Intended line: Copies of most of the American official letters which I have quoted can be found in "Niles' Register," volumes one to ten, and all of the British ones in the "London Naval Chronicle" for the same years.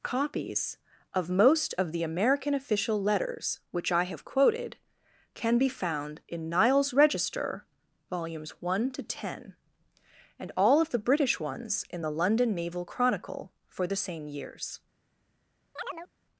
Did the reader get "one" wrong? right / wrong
right